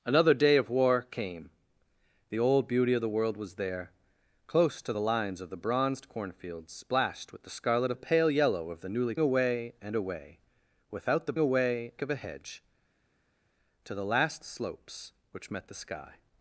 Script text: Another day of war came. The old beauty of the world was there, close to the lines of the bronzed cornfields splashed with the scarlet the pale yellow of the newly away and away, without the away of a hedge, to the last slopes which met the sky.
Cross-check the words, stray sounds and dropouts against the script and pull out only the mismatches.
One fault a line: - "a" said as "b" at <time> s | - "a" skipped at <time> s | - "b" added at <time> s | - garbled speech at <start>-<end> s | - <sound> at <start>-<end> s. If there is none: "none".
none